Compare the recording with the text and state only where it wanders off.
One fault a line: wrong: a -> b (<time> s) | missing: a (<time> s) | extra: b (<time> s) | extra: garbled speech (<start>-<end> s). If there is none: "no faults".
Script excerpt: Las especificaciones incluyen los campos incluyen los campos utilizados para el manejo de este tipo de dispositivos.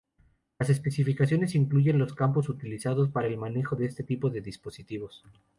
missing: incluyen los campos (2.5 s)